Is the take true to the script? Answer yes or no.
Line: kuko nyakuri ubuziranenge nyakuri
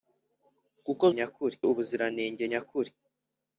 yes